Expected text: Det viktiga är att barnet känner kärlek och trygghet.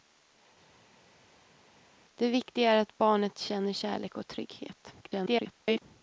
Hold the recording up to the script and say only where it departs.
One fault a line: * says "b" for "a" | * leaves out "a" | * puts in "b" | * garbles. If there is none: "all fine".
* garbles